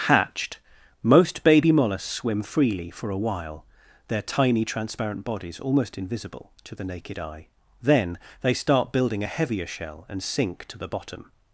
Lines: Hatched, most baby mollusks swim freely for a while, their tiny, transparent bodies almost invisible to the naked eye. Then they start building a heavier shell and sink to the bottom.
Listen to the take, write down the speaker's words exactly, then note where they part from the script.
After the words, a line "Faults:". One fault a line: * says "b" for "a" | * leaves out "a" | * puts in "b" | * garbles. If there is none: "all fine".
Hatched, most baby mollusks swim freely for a while, their tiny, transparent bodies almost invisible to the naked eye. Then they start building a heavier shell and sink to the bottom.
Faults:
all fine